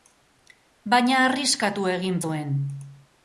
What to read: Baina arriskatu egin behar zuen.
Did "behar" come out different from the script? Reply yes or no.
yes